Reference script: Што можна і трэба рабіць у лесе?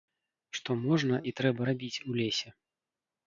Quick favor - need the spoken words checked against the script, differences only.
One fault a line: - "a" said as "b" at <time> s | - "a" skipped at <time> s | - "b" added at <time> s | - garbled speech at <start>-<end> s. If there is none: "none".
none